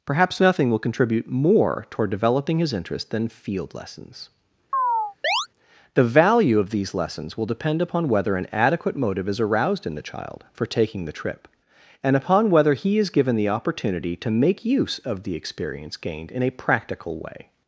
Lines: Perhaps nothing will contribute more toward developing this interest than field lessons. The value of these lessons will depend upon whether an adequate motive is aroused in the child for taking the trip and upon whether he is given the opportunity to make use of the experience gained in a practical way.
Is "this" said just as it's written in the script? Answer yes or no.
no